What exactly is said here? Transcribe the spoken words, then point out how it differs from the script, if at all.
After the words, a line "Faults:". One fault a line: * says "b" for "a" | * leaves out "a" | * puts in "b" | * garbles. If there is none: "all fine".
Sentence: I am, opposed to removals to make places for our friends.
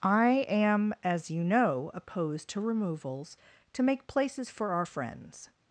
I am, as you know, opposed to removals to make places for our friends.
Faults:
* puts in "as you know"